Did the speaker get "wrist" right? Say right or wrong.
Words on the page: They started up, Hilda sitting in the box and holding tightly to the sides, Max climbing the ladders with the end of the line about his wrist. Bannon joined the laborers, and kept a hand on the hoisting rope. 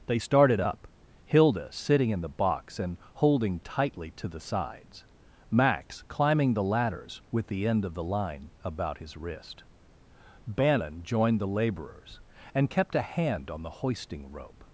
right